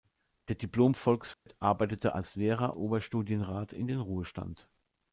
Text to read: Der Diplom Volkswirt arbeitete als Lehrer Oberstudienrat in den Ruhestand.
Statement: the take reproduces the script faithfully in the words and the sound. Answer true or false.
false